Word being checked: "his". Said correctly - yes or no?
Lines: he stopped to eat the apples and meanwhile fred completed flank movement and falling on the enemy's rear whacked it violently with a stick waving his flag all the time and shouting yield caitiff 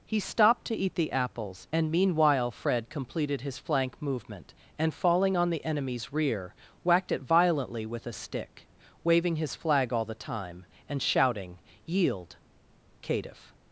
yes